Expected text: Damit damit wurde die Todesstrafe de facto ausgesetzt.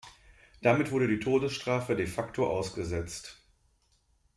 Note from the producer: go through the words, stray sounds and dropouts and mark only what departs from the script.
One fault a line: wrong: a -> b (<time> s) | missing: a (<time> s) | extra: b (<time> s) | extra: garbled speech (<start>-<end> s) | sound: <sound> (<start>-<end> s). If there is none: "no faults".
missing: damit (0.9 s)